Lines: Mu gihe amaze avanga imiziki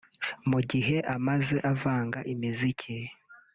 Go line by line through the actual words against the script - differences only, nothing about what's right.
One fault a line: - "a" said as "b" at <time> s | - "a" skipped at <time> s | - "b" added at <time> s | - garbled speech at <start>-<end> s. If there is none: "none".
none